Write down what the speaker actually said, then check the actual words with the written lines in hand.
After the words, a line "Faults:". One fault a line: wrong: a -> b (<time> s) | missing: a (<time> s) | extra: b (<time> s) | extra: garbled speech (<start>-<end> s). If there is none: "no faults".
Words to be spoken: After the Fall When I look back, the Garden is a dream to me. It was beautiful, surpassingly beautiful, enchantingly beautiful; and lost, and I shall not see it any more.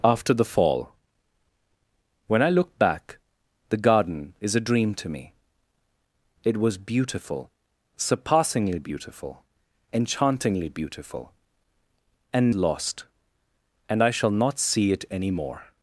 After the Fall When I look back, the Garden is a dream to me. It was beautiful, surpassingly beautiful, enchantingly beautiful; and lost, and I shall not see it any more.
Faults:
no faults